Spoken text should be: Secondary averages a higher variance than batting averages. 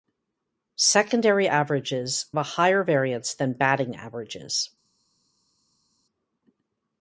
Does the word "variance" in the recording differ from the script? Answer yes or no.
no